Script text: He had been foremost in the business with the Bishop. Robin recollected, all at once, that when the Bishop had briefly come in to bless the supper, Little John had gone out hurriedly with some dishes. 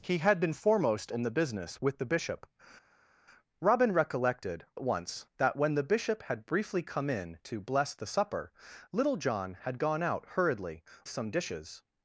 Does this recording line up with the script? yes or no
no